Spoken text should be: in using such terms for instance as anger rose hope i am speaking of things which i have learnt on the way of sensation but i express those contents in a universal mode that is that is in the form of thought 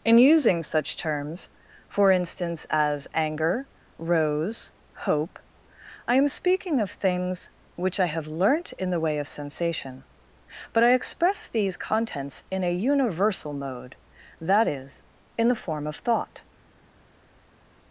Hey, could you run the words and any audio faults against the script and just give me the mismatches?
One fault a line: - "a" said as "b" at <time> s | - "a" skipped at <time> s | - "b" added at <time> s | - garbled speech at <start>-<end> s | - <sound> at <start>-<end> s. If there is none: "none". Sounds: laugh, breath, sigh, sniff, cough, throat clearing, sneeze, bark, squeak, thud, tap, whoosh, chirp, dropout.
- "on" said as "in" at 8.7 s
- "those" said as "these" at 11.5 s
- "that is" skipped at 15.0 s